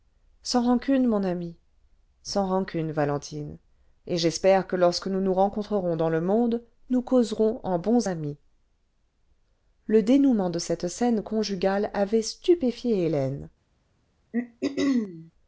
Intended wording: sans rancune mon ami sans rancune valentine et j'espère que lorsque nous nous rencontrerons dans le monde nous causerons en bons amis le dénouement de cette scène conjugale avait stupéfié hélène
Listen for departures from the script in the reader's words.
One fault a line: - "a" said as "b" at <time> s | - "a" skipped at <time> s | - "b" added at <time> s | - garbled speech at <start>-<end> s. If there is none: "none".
none